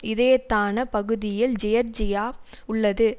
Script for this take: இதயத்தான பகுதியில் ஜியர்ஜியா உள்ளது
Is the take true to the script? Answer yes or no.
yes